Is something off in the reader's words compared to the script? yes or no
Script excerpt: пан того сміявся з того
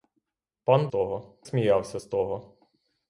no